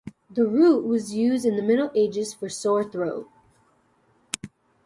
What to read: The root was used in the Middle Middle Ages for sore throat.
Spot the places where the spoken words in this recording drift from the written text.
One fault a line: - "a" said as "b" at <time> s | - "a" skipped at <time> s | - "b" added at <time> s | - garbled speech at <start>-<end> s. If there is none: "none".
- "Middle" skipped at 1.9 s